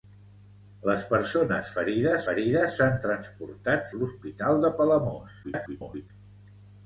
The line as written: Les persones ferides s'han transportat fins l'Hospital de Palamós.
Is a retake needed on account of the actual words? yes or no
yes